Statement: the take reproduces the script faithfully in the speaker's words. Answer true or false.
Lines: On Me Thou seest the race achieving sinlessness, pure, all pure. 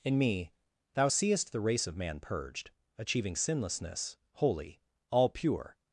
false